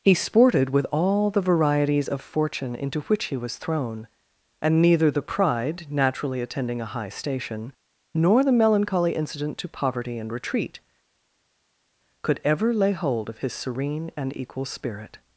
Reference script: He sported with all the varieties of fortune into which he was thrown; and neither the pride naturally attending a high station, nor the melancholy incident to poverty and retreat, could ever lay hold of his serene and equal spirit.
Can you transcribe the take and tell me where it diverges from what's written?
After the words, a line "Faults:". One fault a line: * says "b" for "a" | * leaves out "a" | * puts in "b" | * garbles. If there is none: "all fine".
He sported with all the varieties of fortune into which he was thrown; and neither the pride naturally attending a high station, nor the melancholy incident to poverty and retreat, could ever lay hold of his serene and equal spirit.
Faults:
all fine